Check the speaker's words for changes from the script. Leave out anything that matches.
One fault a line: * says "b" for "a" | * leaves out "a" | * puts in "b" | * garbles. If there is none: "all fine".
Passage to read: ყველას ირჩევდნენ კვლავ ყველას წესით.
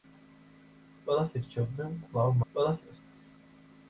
all fine